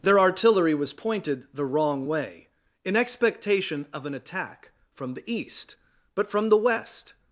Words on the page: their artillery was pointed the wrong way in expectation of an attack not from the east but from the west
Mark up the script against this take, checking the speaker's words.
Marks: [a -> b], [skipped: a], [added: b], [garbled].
their artillery was pointed the wrong way in expectation of an attack [skipped: not] from the east but from the west